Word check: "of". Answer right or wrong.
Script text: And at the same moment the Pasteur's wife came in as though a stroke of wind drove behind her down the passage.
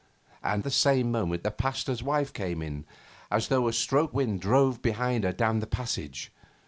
wrong